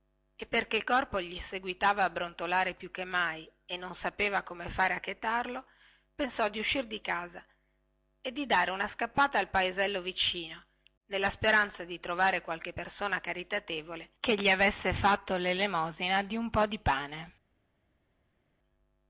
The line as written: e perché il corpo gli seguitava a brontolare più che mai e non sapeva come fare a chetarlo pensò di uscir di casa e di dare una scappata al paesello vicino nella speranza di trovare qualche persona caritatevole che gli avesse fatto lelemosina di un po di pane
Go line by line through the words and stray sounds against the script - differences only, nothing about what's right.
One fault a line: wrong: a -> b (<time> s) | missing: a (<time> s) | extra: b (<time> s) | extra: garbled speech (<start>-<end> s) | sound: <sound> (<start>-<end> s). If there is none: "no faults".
no faults